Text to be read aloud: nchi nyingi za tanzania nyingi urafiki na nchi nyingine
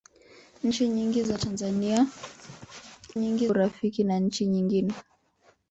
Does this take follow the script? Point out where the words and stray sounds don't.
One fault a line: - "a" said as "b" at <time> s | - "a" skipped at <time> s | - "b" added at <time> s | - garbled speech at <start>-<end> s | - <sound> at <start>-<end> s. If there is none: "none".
none